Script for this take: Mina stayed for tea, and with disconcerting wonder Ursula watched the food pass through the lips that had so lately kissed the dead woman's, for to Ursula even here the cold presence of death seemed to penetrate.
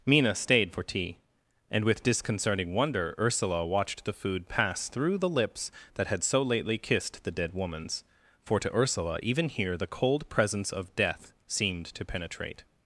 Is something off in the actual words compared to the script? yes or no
no